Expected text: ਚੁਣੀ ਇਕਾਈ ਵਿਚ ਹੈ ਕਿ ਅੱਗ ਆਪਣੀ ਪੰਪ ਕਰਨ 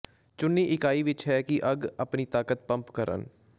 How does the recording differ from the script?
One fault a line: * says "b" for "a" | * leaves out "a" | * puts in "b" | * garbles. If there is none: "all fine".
* puts in "ਤਾਕਤ"